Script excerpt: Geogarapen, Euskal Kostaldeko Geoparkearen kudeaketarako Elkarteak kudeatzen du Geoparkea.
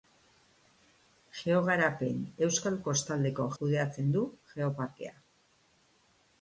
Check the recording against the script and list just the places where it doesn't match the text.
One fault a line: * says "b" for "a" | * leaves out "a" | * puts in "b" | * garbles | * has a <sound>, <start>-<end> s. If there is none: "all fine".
* leaves out "Geoparkearen kudeaketarako Elkarteak"